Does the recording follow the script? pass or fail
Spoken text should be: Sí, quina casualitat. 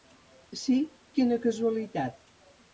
pass